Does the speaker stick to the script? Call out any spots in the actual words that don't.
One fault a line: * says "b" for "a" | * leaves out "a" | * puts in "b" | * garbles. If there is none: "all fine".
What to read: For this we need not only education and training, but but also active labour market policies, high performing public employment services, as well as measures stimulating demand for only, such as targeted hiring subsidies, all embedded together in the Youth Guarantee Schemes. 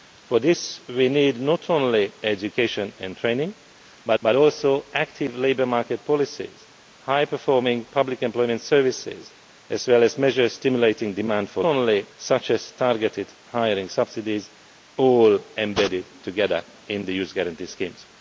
all fine